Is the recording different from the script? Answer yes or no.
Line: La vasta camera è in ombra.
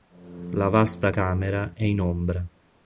no